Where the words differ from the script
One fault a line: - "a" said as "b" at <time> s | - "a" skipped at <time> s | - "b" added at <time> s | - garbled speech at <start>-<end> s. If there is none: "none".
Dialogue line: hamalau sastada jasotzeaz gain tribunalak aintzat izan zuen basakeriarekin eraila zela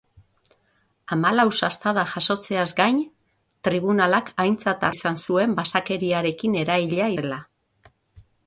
none